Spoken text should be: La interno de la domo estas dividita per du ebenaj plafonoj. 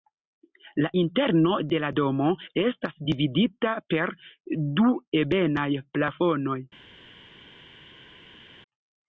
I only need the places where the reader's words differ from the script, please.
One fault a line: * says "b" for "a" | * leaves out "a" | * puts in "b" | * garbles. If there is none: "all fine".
all fine